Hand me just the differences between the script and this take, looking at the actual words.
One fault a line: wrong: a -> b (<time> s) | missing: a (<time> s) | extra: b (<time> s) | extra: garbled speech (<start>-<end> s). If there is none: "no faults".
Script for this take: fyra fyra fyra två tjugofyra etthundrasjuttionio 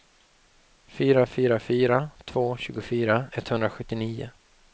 no faults